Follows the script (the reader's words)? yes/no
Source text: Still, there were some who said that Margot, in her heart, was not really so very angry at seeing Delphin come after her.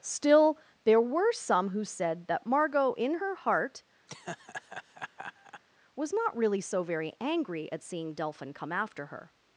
yes